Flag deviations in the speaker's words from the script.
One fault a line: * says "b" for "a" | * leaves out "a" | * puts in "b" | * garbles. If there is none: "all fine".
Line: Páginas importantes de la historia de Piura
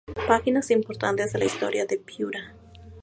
all fine